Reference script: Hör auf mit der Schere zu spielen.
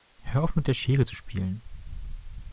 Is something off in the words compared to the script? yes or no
no